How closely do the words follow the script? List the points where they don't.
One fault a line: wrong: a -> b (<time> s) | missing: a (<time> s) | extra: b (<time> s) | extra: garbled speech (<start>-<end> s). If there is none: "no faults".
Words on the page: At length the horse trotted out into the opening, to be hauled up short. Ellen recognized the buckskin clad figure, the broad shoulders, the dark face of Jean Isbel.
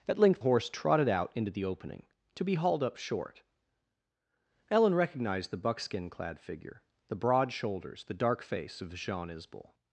missing: the (0.4 s)